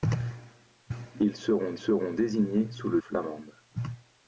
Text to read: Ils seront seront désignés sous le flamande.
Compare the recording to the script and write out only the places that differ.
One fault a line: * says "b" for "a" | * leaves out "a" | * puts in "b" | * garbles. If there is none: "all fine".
all fine